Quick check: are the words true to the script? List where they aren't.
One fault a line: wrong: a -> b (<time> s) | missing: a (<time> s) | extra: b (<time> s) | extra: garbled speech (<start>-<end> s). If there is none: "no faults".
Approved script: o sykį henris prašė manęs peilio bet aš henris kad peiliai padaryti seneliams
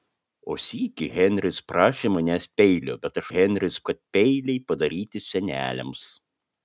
no faults